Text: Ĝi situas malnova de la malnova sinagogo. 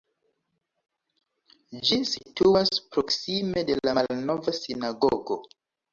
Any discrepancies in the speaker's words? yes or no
yes